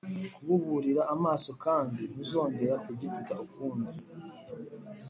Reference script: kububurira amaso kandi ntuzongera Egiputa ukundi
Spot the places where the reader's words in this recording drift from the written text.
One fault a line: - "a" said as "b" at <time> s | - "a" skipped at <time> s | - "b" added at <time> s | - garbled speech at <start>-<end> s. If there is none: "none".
none